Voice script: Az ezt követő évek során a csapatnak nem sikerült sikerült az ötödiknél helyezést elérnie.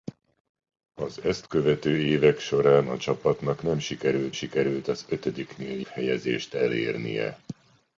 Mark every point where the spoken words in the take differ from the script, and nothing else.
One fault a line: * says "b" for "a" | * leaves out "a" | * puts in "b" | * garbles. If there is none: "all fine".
all fine